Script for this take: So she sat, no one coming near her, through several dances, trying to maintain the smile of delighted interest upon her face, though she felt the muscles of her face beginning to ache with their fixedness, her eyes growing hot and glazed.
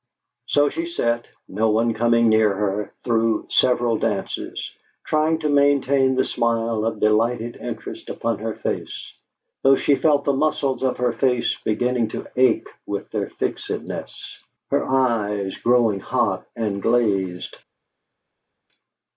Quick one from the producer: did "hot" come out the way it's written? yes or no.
yes